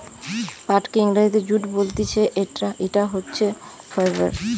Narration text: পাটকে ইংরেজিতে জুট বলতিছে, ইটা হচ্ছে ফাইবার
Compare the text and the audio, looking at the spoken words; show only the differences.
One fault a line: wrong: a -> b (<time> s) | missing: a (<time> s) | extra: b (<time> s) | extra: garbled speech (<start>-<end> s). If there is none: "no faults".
no faults